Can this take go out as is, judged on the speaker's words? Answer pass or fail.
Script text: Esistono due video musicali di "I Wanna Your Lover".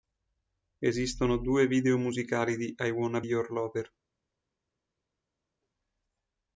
pass